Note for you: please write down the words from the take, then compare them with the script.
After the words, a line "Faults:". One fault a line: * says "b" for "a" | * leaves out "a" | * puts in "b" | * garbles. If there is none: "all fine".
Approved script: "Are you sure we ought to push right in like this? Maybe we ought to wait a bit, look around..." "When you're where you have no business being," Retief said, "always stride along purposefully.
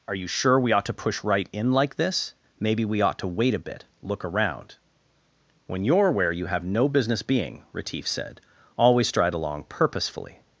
"Are you sure we ought to push right in like this? Maybe we ought to wait a bit, look around..." "When you're where you have no business being," Retief said, "always stride along purposefully.
Faults:
all fine